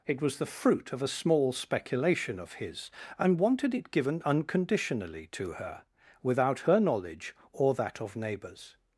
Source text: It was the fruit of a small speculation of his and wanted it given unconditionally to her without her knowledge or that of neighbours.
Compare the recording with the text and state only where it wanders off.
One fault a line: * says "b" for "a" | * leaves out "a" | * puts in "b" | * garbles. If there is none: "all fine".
all fine